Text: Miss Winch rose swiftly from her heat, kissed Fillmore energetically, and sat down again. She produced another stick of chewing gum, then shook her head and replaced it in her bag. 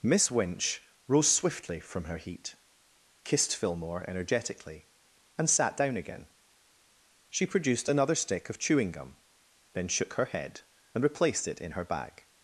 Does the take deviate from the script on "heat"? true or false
false